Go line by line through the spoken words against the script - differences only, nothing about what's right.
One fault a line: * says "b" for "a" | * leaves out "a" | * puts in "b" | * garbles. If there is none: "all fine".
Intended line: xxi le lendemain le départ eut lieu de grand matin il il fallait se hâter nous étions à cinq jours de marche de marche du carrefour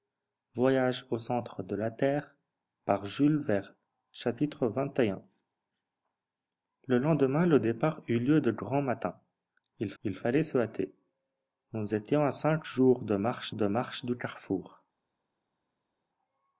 all fine